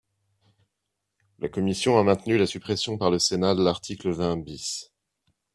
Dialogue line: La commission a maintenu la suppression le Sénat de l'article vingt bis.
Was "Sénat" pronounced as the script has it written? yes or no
yes